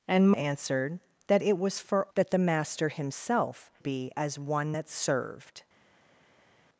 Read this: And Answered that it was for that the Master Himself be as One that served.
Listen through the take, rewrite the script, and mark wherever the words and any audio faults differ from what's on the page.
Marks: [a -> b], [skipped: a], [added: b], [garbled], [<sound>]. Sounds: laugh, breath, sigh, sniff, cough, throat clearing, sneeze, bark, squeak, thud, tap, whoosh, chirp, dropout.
And Answered that it was for that the Master Himself be as One that served.